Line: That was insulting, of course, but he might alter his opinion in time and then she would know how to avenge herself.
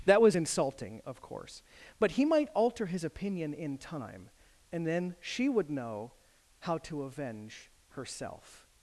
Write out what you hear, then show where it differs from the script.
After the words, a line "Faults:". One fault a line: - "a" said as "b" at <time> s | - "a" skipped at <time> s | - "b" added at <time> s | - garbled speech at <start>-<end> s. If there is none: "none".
That was insulting, of course, but he might alter his opinion in time and then she would know how to avenge herself.
Faults:
none